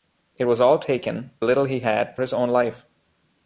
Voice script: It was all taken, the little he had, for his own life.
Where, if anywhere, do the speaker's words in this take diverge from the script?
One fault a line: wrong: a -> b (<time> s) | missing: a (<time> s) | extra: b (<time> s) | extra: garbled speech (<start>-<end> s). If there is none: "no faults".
missing: the (1.3 s)
missing: for (2.2 s)